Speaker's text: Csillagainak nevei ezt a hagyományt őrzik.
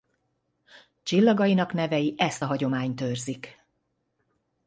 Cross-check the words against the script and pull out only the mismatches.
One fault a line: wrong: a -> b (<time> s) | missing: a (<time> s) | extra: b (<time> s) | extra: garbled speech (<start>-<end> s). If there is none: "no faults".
no faults